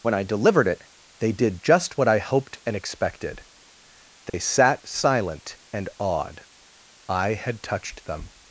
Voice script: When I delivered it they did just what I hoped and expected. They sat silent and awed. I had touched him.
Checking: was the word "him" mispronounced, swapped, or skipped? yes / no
yes